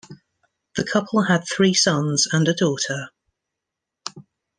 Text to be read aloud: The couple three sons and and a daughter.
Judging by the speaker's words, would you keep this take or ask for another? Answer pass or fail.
fail